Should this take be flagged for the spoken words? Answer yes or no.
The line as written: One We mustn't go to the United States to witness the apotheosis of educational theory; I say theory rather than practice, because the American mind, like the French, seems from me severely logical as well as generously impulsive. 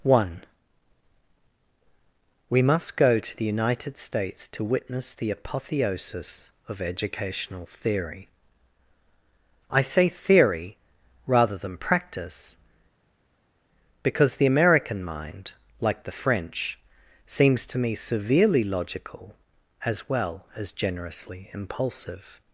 yes